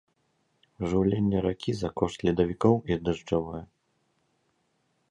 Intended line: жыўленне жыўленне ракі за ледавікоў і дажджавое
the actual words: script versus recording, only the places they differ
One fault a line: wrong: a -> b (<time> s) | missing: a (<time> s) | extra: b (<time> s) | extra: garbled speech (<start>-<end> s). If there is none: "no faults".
missing: жыўленне (1.4 s)
extra: кошт (2.0 s)